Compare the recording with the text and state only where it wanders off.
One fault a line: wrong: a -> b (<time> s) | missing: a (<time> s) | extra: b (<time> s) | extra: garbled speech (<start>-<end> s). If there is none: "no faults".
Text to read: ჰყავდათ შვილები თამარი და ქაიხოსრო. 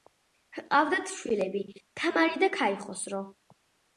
no faults